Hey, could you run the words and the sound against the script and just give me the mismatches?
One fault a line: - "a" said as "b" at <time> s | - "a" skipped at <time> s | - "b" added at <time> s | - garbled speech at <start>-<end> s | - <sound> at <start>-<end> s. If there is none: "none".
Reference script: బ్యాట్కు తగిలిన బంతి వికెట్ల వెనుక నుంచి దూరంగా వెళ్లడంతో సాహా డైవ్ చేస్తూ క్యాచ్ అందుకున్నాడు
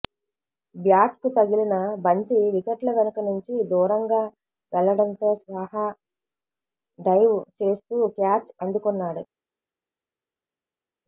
none